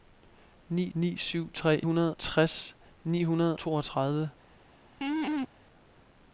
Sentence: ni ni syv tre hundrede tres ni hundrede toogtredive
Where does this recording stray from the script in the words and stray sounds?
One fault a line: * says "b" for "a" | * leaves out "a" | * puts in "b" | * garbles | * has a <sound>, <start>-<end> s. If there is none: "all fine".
* has a laugh, 5.0-5.5 s